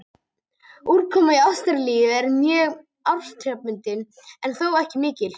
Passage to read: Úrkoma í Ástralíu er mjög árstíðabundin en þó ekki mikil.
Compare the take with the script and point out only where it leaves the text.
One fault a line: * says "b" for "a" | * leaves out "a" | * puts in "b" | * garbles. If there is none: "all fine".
all fine